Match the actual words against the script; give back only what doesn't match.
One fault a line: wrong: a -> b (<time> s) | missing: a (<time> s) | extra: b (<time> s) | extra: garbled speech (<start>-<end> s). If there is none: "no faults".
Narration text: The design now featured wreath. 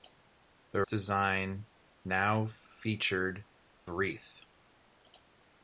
no faults